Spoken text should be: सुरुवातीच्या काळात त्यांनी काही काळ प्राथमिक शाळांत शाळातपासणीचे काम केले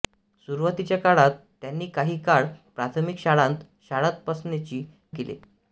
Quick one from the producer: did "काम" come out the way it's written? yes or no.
no